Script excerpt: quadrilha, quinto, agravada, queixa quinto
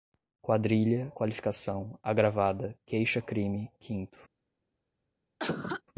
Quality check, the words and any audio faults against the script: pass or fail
fail